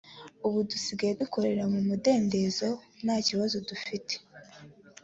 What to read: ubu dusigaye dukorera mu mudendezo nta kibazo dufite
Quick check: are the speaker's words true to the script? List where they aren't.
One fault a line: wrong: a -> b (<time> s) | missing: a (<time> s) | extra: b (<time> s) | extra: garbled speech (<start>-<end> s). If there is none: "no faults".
no faults